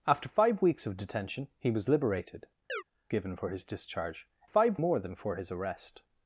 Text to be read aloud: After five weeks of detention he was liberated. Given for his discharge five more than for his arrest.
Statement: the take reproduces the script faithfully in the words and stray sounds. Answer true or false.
false